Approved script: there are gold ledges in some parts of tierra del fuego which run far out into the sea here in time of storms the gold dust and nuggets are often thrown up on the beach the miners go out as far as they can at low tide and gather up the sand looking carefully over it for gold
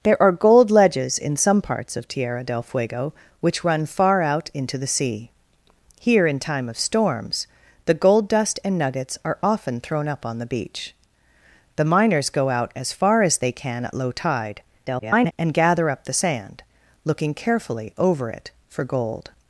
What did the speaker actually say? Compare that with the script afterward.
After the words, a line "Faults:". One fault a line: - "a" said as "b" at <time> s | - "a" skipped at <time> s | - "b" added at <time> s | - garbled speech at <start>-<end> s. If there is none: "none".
there are gold ledges in some parts of tierra del fuego which run far out into the sea here in time of storms the gold dust and nuggets are often thrown up on the beach the miners go out as far as they can at low tide [garbled] and gather up the sand looking carefully over it for gold
Faults:
- garbled speech at 14.9-15.3 s